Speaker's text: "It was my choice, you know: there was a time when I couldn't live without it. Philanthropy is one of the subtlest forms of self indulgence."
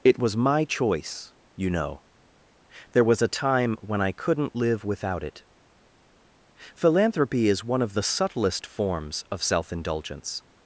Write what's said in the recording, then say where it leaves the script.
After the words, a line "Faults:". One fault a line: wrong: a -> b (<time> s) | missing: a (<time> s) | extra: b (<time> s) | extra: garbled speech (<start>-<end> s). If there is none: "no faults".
"It was my choice, you know: there was a time when I couldn't live without it. Philanthropy is one of the subtlest forms of self indulgence."
Faults:
no faults